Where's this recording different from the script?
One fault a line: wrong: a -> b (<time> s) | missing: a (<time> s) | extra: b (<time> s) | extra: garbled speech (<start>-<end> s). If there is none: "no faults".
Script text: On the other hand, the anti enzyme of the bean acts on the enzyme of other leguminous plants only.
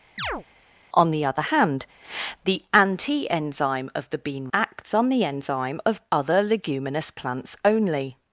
no faults